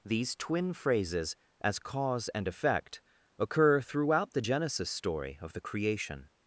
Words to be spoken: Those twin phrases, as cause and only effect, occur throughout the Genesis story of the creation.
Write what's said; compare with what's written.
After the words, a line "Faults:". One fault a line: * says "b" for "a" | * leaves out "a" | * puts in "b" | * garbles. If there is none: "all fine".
These twin phrases, as cause and effect, occur throughout the Genesis story of the creation.
Faults:
* says "These" for "Those"
* leaves out "only"